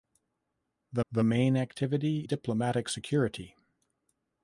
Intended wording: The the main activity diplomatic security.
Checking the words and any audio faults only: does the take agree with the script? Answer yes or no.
yes